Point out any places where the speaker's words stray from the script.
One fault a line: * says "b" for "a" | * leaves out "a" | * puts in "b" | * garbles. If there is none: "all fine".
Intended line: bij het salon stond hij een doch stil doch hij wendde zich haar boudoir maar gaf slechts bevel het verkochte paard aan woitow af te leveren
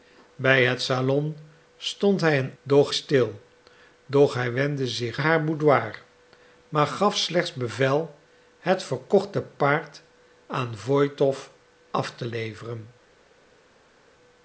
all fine